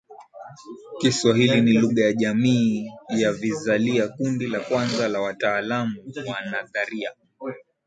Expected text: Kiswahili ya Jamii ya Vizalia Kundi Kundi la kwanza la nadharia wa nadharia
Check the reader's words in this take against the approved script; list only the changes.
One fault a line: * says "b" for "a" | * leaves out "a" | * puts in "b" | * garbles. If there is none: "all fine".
* puts in "ni Lugha"
* leaves out "Kundi"
* says "wataalamu" for "nadharia"